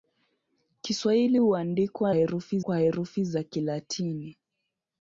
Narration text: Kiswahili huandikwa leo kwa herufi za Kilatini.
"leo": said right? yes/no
no